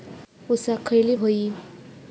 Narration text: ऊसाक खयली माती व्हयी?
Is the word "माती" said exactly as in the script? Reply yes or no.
no